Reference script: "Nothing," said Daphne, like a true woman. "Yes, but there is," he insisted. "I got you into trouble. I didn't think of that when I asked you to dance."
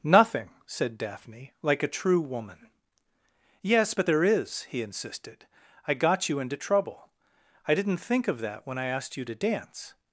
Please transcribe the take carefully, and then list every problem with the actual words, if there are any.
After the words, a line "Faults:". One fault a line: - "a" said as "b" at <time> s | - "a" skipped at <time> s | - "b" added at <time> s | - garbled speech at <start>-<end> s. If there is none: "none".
"Nothing," said Daphne, like a true woman. "Yes, but there is," he insisted. "I got you into trouble. I didn't think of that when I asked you to dance."
Faults:
none